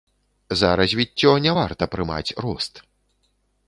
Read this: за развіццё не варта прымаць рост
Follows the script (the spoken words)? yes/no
yes